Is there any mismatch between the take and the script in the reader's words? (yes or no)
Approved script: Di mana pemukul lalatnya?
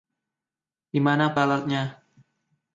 yes